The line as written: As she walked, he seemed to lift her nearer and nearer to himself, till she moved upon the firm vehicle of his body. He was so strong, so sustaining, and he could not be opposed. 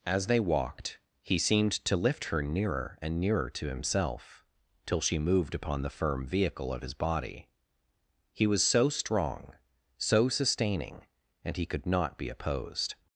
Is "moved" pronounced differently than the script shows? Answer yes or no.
no